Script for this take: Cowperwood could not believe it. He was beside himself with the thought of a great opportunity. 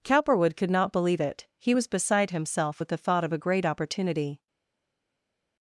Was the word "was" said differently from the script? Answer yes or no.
no